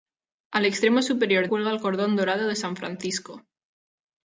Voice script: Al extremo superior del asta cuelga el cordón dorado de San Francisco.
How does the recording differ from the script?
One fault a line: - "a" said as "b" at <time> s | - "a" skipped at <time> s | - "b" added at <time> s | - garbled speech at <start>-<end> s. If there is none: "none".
- "del asta" skipped at 1.5 s